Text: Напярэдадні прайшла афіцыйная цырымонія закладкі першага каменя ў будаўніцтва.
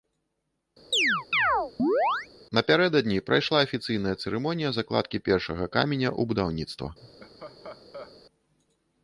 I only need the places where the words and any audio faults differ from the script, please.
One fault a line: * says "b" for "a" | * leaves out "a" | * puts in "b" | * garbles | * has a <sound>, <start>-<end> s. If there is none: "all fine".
* has a chirp, 0.9-2.3 s
* has a laugh, 7.0-8.2 s